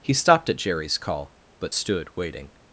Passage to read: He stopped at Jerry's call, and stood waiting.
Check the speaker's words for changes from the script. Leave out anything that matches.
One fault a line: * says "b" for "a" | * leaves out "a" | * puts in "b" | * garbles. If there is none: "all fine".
* says "but" for "and"